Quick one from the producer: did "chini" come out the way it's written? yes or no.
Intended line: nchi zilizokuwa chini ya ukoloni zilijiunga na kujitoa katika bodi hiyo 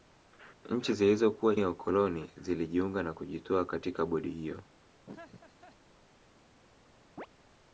no